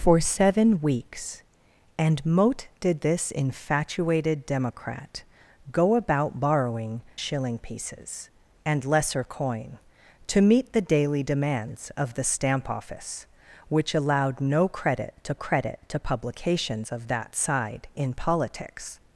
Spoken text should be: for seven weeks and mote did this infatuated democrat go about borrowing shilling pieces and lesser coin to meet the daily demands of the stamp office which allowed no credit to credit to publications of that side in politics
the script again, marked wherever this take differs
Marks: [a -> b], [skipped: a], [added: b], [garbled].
for seven weeks and mote did this infatuated democrat go about borrowing shilling pieces and lesser coin to meet the daily demands of the stamp office which allowed no credit to credit to publications of that side in politics